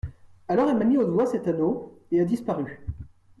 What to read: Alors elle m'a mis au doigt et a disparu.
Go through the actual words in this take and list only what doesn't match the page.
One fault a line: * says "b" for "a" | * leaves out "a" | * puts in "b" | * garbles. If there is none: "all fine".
* puts in "cet anneau"